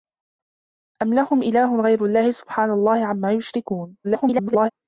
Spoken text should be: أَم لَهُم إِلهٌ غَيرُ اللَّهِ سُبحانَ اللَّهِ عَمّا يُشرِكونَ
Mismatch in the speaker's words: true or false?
true